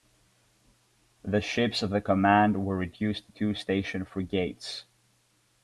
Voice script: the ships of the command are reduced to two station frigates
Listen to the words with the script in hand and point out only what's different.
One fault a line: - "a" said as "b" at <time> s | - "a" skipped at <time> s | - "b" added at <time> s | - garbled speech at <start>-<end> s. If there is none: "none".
- "are" said as "were" at 2.6 s